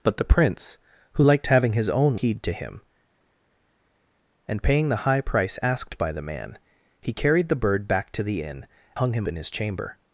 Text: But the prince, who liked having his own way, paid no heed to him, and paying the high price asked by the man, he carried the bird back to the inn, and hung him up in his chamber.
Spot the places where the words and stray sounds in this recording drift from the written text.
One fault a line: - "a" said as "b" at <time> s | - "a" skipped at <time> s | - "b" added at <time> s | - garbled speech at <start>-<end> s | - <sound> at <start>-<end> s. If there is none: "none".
- "way paid no" skipped at 2.2 s
- "and" skipped at 8.7 s
- "up" skipped at 9.3 s